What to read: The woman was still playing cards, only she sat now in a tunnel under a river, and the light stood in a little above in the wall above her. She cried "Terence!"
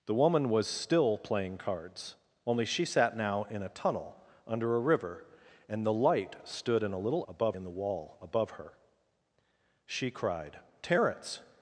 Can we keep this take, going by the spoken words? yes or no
yes